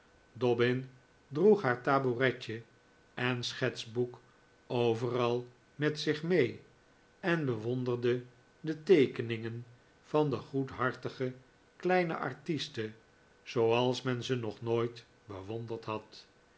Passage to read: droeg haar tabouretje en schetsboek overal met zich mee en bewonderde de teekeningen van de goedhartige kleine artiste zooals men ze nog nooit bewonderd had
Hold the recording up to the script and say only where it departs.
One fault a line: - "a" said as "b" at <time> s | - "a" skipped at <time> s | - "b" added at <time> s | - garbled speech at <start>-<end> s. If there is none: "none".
none